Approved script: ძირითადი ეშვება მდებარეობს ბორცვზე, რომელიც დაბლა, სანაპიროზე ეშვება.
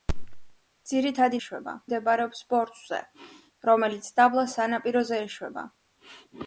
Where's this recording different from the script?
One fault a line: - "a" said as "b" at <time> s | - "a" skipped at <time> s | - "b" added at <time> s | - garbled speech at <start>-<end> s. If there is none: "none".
none